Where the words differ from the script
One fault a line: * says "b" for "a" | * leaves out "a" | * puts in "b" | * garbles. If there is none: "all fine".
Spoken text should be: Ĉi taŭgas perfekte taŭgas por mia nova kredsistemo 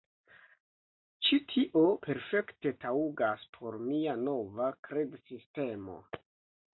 * says "tio" for "taŭgas"